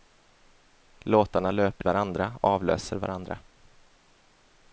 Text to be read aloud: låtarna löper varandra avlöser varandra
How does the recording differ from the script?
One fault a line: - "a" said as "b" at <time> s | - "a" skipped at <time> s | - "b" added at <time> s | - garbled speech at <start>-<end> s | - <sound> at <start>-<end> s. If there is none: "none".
none